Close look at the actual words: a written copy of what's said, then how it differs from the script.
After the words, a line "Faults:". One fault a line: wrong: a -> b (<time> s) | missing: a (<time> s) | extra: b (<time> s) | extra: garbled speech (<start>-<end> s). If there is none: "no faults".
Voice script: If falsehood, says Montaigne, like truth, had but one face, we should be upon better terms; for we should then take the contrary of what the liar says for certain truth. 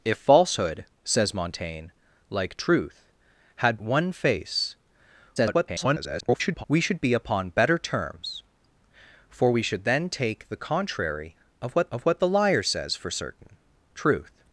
If falsehood, says Montaigne, like truth, had one face, [garbled] we should be upon better terms; for we should then take the contrary of what of what the liar says for certain truth.
Faults:
missing: but (3.8 s)
extra: garbled speech (5.4-6.6 s)
extra: of what (11.9 s)